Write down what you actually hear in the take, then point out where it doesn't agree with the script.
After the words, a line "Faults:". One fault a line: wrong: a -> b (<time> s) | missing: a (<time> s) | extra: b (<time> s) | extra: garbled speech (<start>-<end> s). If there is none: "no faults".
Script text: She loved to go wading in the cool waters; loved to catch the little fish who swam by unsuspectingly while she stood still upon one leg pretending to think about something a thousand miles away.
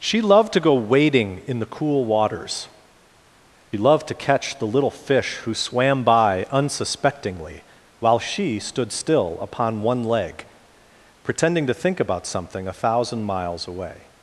She loved to go wading in the cool waters; loved to catch the little fish who swam by unsuspectingly while she stood still upon one leg pretending to think about something a thousand miles away.
Faults:
no faults